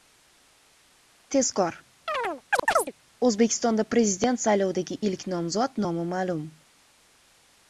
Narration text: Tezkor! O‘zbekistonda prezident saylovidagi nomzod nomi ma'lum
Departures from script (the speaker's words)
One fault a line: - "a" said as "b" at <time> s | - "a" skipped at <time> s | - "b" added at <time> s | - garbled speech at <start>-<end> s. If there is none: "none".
- "ilk" added at 5.1 s